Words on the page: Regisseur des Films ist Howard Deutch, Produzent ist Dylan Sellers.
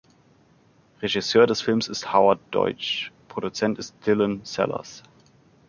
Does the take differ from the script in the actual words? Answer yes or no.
no